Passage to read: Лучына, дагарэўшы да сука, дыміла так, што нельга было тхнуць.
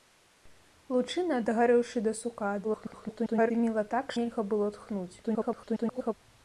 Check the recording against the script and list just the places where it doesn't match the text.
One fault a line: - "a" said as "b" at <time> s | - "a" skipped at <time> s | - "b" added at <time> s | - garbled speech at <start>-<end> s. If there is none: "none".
- garbled speech at 2.6-3.5 s
- "што" skipped at 4.1 s
- garbled speech at 5.2-6.1 s